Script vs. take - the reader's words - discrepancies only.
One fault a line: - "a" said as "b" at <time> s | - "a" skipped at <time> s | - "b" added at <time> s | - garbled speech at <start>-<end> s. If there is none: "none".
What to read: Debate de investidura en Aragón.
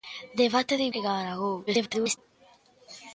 - "investidura" skipped at 0.8 s
- garbled speech at 1.7-2.2 s